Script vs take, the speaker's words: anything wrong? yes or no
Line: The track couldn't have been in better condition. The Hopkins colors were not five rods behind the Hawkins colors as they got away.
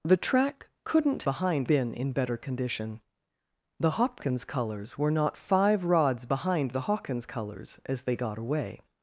yes